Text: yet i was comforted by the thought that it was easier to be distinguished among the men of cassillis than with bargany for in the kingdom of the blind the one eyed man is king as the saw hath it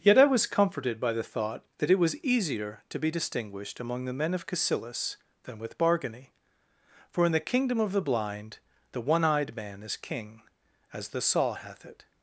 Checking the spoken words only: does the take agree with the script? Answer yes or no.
yes